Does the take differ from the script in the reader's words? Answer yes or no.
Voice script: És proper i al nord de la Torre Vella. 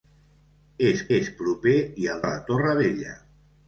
yes